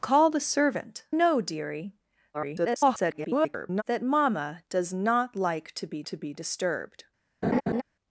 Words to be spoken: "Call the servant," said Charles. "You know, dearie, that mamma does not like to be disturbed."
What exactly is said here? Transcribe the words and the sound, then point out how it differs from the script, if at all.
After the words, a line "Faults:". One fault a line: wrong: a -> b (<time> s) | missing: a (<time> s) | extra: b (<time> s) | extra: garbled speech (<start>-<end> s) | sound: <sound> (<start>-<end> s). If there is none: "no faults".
"Call the servant," know, dearie, [garbled] that mamma does not like to be to be disturbed."
Faults:
missing: said Charles You (1.1 s)
extra: garbled speech (2.3-3.8 s)
extra: to be (6.0 s)
sound: laugh (7.4-7.8 s)